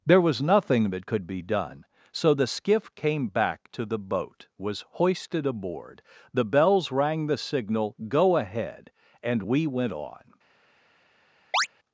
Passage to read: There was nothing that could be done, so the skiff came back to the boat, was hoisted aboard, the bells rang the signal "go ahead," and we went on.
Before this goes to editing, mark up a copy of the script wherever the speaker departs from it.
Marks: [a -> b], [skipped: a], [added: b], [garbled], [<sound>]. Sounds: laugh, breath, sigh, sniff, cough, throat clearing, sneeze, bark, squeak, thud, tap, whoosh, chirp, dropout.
There was nothing that could be done, so the skiff came back to the boat, was hoisted aboard, the bells rang the signal "go ahead," and we went on. [chirp]